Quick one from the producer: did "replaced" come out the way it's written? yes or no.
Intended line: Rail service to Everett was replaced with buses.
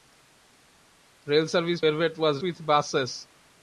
no